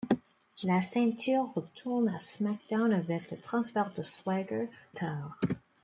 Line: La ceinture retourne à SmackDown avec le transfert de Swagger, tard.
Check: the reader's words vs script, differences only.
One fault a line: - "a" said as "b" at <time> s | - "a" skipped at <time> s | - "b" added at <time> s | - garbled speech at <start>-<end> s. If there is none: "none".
none